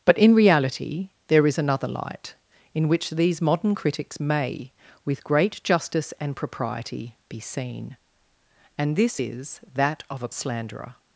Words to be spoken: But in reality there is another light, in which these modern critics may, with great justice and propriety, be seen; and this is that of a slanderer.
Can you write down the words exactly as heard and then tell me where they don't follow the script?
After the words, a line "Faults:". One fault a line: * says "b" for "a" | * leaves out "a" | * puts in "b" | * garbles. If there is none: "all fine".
But in reality there is another light, in which these modern critics may, with great justice and propriety, be seen; and this is that of a slanderer.
Faults:
all fine